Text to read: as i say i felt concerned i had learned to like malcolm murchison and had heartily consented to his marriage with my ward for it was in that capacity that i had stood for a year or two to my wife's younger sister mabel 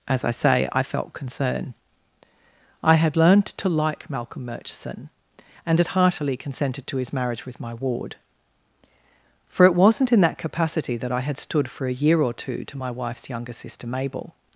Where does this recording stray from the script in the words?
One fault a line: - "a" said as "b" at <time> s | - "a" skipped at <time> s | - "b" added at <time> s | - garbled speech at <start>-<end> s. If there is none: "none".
- "concerned" said as "concern" at 1.1 s
- "was" said as "wasn't" at 9.7 s